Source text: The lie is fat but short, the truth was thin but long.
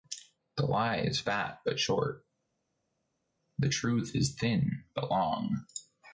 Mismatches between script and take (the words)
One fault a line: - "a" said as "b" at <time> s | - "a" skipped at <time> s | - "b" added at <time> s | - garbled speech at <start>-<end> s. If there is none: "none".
- "was" said as "is" at 4.1 s